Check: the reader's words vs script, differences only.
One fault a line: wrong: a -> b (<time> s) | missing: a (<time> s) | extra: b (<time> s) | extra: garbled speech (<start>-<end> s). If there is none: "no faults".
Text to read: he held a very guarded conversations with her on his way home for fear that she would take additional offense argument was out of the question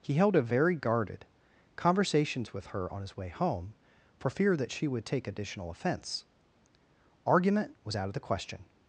no faults